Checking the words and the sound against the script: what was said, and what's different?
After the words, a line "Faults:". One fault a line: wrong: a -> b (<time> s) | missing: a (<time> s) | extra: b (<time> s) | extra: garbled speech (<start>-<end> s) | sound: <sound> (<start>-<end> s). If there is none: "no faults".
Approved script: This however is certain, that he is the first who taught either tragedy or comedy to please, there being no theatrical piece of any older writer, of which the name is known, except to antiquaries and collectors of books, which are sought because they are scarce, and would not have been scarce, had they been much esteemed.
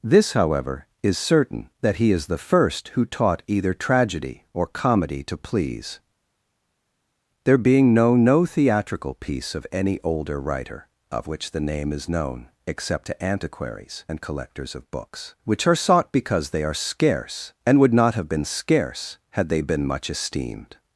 This however is certain, that he is the first who taught either tragedy or comedy to please, there being no no theatrical piece of any older writer, of which the name is known, except to antiquaries and collectors of books, which are sought because they are scarce, and would not have been scarce, had they been much esteemed.
Faults:
extra: no (8.1 s)